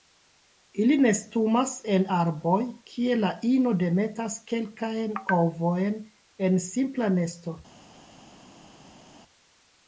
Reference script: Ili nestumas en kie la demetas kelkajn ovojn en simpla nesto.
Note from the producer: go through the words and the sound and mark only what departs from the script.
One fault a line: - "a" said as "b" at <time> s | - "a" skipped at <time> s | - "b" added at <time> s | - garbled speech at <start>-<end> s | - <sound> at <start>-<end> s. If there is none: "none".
- "arboj" added at 2.2 s
- "ino" added at 3.5 s